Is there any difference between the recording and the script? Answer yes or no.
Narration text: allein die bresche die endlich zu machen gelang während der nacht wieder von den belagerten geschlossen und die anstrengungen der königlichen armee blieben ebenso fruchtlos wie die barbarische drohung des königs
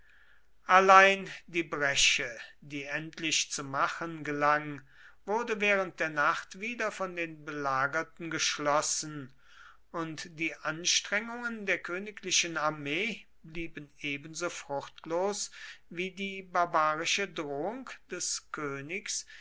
yes